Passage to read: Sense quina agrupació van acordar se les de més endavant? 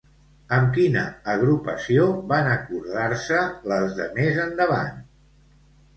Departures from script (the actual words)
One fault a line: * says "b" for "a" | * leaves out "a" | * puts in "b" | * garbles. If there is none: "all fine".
* says "Amb" for "Sense"